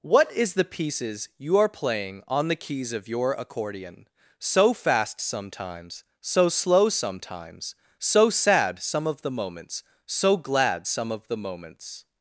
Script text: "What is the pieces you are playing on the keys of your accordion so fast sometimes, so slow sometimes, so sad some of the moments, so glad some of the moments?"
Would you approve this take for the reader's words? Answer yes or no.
yes